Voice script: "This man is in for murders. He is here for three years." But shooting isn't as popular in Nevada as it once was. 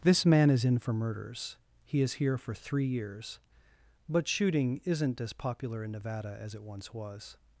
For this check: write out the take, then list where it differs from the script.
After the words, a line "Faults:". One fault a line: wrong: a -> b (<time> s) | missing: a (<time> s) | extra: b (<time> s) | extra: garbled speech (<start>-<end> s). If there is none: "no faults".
"This man is in for murders. He is here for three years." But shooting isn't as popular in Nevada as it once was.
Faults:
no faults